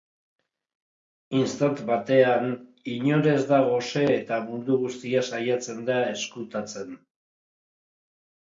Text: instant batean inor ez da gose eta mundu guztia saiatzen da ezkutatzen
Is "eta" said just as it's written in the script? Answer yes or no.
yes